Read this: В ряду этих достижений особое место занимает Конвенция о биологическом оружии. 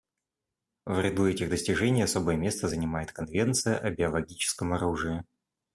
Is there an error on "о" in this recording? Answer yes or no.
no